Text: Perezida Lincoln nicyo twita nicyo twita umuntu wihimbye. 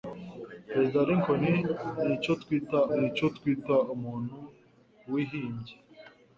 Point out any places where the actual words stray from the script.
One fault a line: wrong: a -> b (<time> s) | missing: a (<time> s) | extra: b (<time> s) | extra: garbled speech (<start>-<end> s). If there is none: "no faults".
no faults